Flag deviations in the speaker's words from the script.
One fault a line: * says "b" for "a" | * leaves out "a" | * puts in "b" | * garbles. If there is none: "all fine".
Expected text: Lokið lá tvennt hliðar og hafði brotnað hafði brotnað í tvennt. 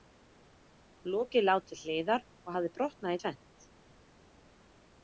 * says "til" for "tvennt"
* leaves out "hafði brotnað"